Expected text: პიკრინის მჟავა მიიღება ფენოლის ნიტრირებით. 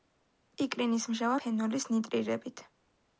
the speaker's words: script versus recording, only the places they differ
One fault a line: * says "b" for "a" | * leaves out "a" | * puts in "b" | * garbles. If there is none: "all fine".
* leaves out "მიიღება"